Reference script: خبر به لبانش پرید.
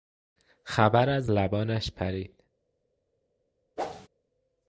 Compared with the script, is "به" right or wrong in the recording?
wrong